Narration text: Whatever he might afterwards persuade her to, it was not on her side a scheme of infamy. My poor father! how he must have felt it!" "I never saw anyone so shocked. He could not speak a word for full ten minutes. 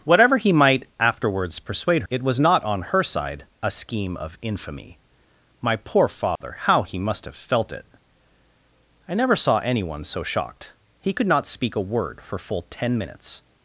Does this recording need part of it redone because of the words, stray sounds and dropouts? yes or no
yes